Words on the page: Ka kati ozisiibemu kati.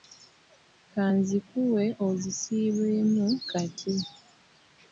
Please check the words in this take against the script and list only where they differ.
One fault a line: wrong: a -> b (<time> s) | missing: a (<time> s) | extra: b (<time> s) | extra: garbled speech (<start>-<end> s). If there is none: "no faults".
wrong: kati -> nzikuwe (1.2 s)